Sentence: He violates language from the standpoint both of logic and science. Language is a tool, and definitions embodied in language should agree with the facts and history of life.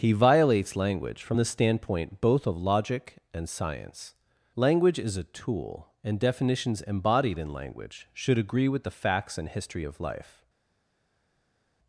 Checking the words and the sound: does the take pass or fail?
pass